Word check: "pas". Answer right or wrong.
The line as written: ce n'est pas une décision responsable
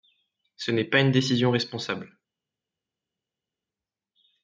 right